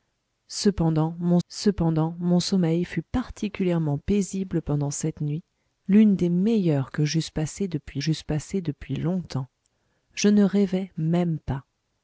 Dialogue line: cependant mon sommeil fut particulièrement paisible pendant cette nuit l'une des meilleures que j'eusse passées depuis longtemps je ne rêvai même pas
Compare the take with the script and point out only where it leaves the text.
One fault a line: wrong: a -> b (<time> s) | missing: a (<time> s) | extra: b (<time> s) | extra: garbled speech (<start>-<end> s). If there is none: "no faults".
extra: cependant mon (1.5 s)
extra: j'eusse passées depuis (8.0 s)